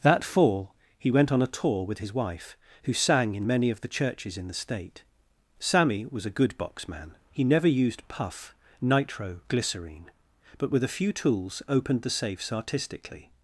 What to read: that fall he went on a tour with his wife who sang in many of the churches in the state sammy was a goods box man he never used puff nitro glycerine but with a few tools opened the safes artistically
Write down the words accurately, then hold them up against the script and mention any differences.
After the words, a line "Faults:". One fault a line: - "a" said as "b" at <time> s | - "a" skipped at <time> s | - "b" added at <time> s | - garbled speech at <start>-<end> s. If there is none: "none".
that fall he went on a tour with his wife who sang in many of the churches in the state sammy was a good box man he never used puff nitro glycerine but with a few tools opened the safes artistically
Faults:
- "goods" said as "good" at 6.4 s